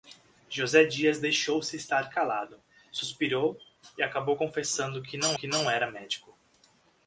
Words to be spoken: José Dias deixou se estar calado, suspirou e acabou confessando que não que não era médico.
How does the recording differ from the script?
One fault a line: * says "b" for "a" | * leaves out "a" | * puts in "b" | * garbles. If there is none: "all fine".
all fine